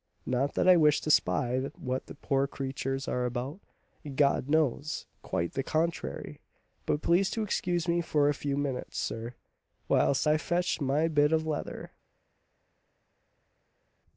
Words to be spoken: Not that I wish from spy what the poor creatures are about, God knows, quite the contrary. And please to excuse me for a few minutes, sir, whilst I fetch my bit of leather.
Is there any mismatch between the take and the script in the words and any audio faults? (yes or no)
yes